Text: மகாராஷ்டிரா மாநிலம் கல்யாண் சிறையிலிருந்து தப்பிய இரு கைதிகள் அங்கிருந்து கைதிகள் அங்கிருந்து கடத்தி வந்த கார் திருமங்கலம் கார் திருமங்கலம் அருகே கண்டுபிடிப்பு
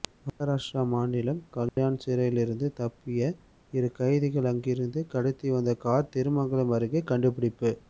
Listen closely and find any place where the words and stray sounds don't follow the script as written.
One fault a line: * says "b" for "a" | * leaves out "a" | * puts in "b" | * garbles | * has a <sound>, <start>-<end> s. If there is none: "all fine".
* has a dropout, 1.7-1.8 s
* leaves out "கைதிகள் அங்கிருந்து"
* leaves out "கார் திருமங்கலம்"